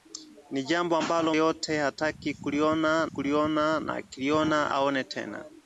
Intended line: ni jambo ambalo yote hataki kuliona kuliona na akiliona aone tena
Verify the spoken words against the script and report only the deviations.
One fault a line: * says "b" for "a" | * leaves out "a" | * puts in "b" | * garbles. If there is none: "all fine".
all fine